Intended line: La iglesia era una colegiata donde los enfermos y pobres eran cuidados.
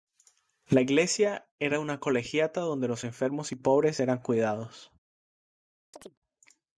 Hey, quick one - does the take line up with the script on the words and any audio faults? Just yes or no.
no